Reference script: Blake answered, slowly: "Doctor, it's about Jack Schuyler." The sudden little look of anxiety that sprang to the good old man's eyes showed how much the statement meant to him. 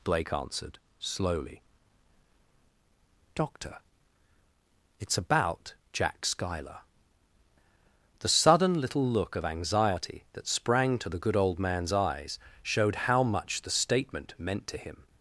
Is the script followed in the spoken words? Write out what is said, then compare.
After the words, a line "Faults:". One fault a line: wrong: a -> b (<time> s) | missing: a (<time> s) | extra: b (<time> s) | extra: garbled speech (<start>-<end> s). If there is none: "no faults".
Blake answered, slowly: "Doctor, it's about Jack Schuyler." The sudden little look of anxiety that sprang to the good old man's eyes showed how much the statement meant to him.
Faults:
no faults